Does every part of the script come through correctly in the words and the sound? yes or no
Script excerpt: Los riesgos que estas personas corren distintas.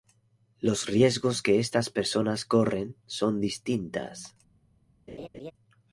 no